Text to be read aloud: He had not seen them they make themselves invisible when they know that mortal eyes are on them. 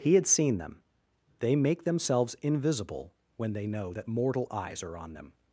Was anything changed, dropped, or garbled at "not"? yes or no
yes